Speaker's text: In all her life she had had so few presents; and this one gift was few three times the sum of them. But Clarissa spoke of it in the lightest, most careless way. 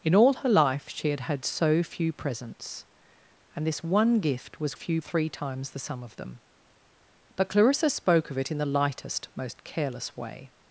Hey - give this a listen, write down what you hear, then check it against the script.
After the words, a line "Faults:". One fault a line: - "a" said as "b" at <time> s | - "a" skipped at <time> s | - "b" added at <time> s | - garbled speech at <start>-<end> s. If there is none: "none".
In all her life she had had so few presents; and this one gift was few three times the sum of them. But Clarissa spoke of it in the lightest, most careless way.
Faults:
none